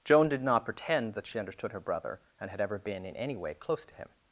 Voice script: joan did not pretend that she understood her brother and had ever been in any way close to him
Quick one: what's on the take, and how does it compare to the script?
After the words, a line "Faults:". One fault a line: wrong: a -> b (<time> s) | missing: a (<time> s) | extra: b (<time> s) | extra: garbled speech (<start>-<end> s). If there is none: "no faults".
joan did not pretend that she understood her brother and had ever been in any way close to him
Faults:
no faults